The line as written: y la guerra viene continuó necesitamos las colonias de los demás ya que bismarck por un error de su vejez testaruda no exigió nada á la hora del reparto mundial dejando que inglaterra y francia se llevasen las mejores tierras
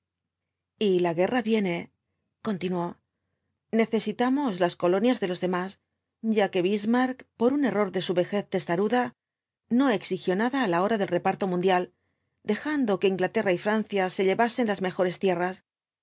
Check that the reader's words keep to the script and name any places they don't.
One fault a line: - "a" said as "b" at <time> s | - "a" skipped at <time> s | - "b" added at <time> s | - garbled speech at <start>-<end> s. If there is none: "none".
none